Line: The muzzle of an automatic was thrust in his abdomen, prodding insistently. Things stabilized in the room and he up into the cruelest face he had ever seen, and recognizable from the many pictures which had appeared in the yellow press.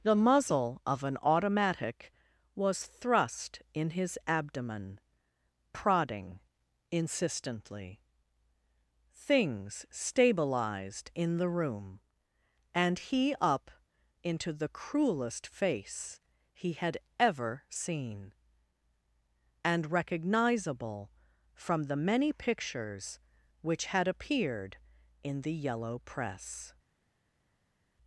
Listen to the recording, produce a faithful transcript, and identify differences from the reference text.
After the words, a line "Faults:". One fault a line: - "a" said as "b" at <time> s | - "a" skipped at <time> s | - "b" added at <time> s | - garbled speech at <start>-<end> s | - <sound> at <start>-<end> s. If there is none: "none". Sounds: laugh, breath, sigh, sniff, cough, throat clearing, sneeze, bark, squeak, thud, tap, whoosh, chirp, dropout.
The muzzle of an automatic was thrust in his abdomen, prodding insistently. Things stabilized in the room and he up into the cruelest face he had ever seen, and recognizable from the many pictures which had appeared in the yellow press.
Faults:
none